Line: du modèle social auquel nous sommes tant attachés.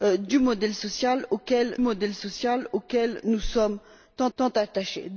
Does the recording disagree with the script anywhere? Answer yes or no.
yes